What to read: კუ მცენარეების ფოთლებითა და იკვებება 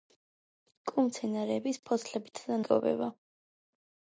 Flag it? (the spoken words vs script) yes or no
no